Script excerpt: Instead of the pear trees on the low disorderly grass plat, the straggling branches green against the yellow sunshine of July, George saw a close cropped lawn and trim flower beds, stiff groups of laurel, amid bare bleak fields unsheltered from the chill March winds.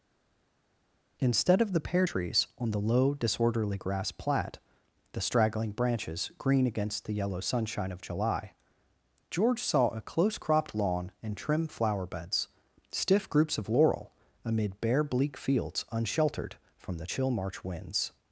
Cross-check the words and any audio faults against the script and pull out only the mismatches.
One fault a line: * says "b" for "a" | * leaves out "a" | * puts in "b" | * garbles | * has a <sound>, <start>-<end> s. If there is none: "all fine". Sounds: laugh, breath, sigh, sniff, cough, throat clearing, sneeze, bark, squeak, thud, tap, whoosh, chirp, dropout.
all fine